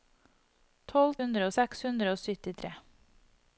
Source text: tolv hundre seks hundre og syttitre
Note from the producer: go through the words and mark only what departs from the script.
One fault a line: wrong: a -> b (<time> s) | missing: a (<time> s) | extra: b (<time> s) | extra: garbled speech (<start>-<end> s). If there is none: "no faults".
no faults